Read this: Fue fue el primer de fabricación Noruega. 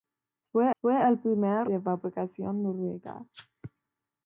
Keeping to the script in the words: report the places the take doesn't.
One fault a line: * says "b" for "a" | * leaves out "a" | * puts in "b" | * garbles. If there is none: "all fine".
all fine